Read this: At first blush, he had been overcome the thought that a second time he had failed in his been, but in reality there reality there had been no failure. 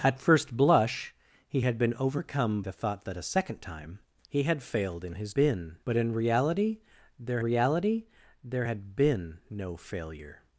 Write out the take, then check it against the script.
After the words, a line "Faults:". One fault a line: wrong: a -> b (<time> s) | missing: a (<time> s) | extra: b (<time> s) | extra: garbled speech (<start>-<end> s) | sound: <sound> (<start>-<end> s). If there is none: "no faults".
At first blush, he had been overcome the thought that a second time he had failed in his been, but in reality there reality there had been no failure.
Faults:
no faults